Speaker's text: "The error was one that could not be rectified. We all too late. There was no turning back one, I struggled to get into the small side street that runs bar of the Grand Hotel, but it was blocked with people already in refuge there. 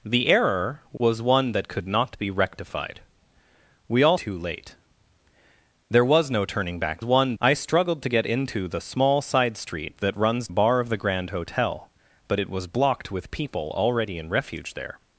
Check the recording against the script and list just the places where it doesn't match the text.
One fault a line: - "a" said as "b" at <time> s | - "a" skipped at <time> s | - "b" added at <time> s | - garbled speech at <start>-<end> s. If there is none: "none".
none